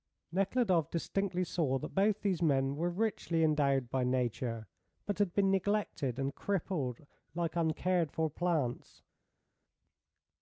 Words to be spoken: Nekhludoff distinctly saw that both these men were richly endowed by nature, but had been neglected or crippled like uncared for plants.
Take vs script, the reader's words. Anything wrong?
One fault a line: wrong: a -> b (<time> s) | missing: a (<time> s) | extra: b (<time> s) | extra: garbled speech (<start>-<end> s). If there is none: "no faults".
wrong: or -> and (6.2 s)